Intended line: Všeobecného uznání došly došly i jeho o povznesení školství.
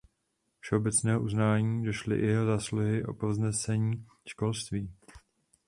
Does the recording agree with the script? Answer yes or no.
no